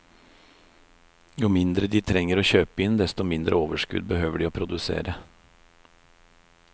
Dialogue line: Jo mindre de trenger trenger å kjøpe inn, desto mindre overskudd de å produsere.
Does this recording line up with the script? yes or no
no